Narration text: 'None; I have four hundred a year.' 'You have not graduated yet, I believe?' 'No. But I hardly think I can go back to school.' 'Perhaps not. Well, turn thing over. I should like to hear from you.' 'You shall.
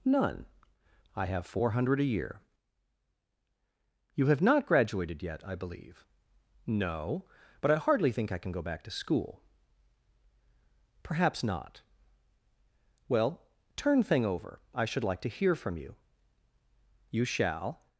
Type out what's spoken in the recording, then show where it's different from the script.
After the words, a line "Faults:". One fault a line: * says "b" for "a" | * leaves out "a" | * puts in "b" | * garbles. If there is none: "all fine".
'None; I have four hundred a year.' 'You have not graduated yet, I believe?' 'No. But I hardly think I can go back to school.' 'Perhaps not. Well, turn thing over. I should like to hear from you.' 'You shall.
Faults:
all fine